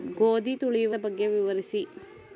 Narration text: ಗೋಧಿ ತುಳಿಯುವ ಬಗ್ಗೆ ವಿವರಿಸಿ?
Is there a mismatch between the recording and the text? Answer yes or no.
no